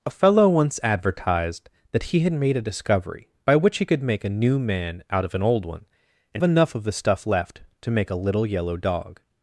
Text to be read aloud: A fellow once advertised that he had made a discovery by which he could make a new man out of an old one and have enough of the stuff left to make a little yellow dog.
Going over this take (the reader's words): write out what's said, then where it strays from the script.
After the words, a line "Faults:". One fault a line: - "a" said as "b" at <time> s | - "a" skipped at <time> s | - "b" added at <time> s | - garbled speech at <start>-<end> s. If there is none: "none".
A fellow once advertised that he had made a discovery by which he could make a new man out of an old one and enough of the stuff left to make a little yellow dog.
Faults:
- "have" skipped at 6.4 s